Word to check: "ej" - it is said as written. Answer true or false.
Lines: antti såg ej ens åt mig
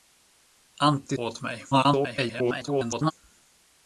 false